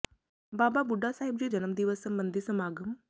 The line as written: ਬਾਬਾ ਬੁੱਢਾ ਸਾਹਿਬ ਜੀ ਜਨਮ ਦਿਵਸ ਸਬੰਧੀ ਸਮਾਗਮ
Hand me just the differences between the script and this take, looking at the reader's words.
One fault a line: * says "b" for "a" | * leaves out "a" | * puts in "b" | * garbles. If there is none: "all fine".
all fine